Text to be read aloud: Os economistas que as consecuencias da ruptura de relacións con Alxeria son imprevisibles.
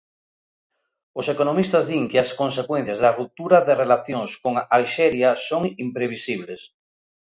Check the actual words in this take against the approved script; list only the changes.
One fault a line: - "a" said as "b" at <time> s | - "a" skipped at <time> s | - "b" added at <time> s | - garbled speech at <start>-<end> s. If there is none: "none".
- "din" added at 1.9 s